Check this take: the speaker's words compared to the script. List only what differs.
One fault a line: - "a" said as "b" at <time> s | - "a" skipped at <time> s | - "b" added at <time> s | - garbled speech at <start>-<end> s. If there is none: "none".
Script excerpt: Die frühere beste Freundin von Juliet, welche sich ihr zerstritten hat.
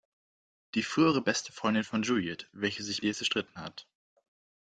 none